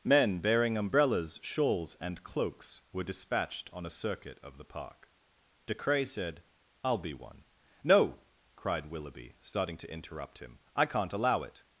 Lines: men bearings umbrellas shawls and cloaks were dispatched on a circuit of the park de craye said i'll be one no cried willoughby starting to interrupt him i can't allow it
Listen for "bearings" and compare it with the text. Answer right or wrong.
wrong